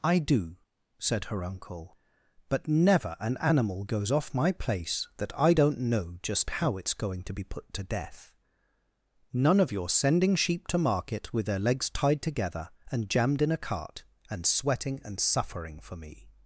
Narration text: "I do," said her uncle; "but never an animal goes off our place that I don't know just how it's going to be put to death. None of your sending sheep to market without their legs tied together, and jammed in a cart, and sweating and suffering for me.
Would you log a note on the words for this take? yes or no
yes